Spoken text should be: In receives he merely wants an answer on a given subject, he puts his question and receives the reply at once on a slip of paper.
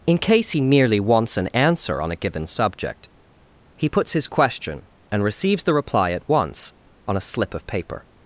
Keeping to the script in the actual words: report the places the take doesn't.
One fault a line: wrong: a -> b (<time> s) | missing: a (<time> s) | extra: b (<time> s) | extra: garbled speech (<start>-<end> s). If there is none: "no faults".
wrong: receives -> case (0.2 s)